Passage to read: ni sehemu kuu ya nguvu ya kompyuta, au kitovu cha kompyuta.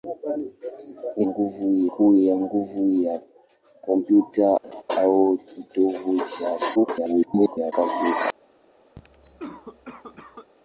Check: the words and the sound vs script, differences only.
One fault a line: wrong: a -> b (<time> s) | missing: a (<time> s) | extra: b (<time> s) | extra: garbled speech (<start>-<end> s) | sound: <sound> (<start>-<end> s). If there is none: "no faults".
wrong: sehemu -> nguvu (1.2 s)
sound: laugh (4.6-4.8 s)
extra: garbled speech (6.7-7.7 s)
sound: cough (9.0-10.5 s)